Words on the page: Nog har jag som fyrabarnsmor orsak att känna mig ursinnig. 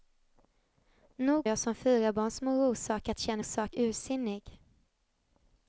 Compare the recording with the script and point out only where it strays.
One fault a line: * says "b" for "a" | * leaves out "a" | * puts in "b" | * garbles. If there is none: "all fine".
* leaves out "har"
* says "orsak" for "mig"